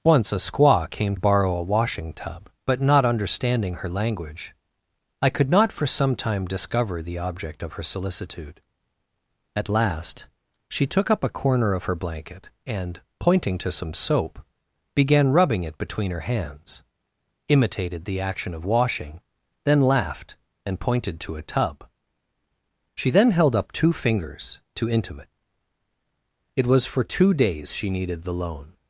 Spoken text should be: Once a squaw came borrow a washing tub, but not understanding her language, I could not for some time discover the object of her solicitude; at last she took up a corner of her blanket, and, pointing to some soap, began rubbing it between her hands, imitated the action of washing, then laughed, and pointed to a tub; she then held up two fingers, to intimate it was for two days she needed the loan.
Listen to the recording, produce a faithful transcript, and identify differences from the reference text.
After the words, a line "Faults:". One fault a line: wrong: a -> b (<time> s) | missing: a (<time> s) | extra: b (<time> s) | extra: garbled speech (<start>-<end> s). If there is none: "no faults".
Once a squaw came borrow a washing tub, but not understanding her language, I could not for some time discover the object of her solicitude; at last she took up a corner of her blanket, and, pointing to some soap, began rubbing it between her hands, imitated the action of washing, then laughed, and pointed to a tub; she then held up two fingers, to intimate it was for two days she needed the loan.
Faults:
no faults